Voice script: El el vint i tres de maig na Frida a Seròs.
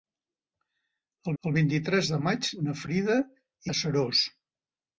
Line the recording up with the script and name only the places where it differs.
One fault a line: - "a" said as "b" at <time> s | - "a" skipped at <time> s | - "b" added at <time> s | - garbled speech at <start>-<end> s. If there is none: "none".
none